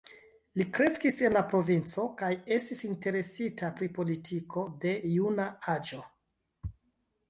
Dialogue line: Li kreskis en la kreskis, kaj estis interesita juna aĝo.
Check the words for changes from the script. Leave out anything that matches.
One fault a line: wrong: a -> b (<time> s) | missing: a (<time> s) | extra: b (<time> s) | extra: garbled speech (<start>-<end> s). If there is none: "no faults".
wrong: kreskis -> provinco (1.5 s)
extra: pri politiko de (3.8 s)